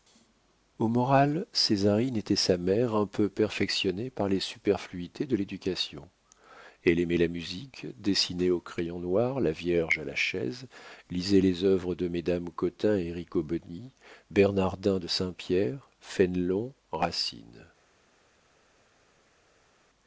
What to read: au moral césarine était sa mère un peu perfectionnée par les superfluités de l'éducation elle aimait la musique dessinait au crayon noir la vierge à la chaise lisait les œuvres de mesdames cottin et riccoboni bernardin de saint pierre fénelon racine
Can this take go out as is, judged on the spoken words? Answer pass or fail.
pass